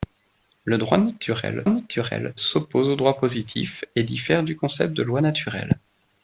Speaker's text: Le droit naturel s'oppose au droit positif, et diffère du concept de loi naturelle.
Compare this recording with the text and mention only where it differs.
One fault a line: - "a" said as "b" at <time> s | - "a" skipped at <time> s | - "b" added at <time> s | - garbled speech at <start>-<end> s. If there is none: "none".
- "naturel" added at 1.7 s